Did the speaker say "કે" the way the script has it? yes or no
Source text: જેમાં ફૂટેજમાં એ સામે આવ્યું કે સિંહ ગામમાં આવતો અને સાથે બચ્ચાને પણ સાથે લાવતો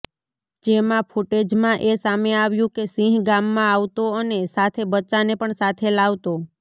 yes